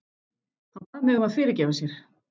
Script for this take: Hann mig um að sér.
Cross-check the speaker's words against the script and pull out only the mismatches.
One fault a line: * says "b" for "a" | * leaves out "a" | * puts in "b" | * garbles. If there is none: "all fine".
* puts in "bað"
* puts in "fyrirgefa"